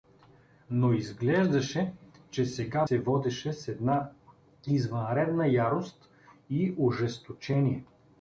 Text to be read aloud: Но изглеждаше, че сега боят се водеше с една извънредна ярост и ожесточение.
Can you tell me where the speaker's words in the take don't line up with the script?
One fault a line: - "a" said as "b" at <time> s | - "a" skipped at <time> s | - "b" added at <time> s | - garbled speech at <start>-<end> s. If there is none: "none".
- "боят" skipped at 2.9 s